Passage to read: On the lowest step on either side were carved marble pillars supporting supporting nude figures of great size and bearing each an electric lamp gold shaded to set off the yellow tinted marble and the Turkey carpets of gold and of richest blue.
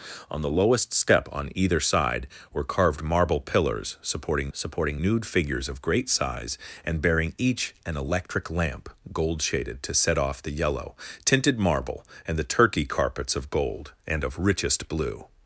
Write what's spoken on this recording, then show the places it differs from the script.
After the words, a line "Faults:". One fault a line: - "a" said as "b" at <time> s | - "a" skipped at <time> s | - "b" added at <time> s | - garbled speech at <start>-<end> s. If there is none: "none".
On the lowest step on either side were carved marble pillars supporting supporting nude figures of great size and bearing each an electric lamp gold shaded to set off the yellow tinted marble and the Turkey carpets of gold and of richest blue.
Faults:
none